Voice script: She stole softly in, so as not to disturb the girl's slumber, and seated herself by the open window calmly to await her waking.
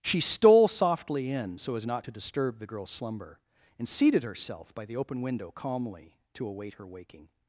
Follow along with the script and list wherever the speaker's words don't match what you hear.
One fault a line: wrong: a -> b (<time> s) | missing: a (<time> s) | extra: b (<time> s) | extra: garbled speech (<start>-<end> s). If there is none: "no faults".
no faults